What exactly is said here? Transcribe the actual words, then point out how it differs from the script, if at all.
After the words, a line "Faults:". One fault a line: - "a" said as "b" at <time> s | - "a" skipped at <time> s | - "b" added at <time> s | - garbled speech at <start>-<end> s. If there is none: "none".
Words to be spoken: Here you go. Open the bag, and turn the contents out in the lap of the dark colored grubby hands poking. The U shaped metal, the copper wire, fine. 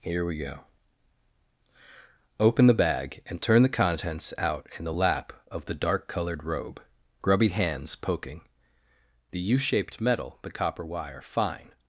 Here we go. Open the bag, and turn the contents out in the lap of the dark colored robe, grubby hands poking. The U shaped metal, the copper wire, fine.
Faults:
- "you" said as "we" at 0.2 s
- "robe" added at 6.5 s